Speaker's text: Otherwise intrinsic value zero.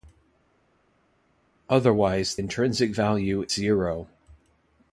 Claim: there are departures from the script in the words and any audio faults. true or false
false